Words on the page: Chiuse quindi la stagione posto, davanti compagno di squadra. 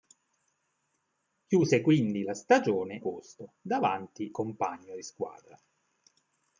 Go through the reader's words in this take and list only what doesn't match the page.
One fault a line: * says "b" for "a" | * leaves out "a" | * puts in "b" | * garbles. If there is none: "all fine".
all fine